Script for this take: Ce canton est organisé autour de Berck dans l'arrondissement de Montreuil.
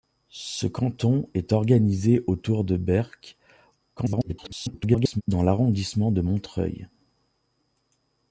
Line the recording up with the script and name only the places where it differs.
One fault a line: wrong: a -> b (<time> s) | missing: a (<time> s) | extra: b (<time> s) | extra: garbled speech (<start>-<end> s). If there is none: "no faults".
extra: garbled speech (4.0-5.2 s)